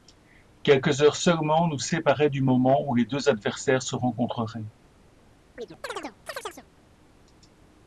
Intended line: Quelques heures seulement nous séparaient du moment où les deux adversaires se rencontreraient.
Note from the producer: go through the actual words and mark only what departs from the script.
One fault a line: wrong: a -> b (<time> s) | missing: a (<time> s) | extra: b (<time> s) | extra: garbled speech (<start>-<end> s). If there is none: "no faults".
no faults